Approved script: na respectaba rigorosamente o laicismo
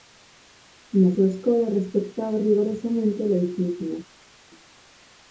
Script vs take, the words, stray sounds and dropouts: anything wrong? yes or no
yes